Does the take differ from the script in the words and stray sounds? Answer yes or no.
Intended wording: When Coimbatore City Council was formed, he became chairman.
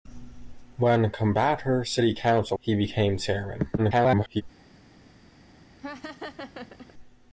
yes